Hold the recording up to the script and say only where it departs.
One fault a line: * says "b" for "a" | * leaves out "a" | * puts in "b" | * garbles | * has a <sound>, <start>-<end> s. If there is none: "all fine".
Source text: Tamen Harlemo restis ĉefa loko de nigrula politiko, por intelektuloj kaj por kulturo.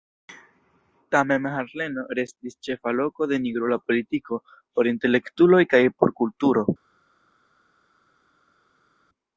all fine